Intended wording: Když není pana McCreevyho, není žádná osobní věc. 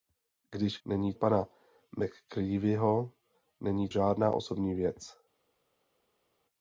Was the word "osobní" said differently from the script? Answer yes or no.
no